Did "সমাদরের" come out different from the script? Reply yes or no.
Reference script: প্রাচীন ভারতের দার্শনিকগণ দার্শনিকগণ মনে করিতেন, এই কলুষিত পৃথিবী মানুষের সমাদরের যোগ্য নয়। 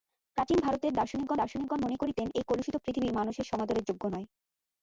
no